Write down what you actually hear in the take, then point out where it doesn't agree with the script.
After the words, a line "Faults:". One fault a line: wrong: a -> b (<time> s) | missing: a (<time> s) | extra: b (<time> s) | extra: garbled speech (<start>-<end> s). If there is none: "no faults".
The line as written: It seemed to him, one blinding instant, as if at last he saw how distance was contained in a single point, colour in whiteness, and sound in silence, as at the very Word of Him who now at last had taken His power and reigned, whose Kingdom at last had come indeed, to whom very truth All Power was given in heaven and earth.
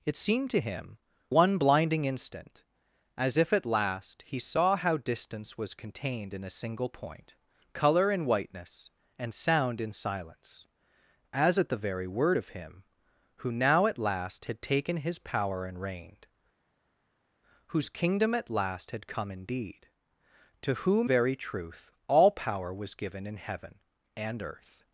It seemed to him, one blinding instant, as if at last he saw how distance was contained in a single point, colour in whiteness, and sound in silence, as at the very Word of Him who now at last had taken His power and reigned, whose Kingdom at last had come indeed, to whom very truth All Power was given in heaven and earth.
Faults:
no faults